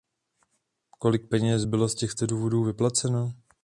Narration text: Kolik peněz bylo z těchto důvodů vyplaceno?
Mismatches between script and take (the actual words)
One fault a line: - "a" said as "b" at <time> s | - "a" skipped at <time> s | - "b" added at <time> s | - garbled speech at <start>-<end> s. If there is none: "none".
none